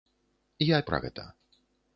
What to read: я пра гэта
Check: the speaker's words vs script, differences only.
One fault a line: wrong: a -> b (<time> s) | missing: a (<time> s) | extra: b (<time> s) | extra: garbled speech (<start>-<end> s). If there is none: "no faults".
no faults